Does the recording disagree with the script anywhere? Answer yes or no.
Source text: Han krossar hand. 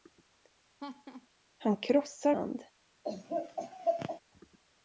no